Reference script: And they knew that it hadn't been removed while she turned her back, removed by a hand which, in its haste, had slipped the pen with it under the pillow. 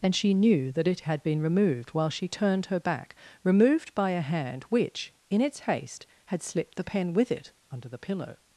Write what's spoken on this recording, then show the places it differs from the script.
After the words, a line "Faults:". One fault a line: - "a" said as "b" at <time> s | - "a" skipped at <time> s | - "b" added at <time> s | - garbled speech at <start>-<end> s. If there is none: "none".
And she knew that it had been removed while she turned her back, removed by a hand which, in its haste, had slipped the pen with it under the pillow.
Faults:
- "they" said as "she" at 0.1 s
- "hadn't" said as "had" at 1.0 s